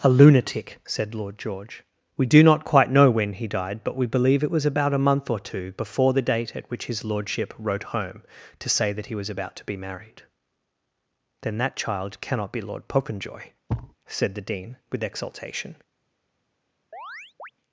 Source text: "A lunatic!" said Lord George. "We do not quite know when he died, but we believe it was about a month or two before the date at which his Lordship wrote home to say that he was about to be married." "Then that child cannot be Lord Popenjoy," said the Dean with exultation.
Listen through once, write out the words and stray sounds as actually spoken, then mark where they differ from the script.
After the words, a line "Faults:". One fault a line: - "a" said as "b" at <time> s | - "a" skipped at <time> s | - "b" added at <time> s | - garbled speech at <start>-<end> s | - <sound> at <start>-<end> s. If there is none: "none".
"A lunatic!" said Lord George. "We do not quite know when he died, but we believe it was about a month or two before the date at which his Lordship wrote home to say that he was about to be married." "Then that child cannot be Lord Popenjoy," said the Dean with exultation.
Faults:
- thud at 13.7-14.0 s
- chirp at 16.9-17.5 s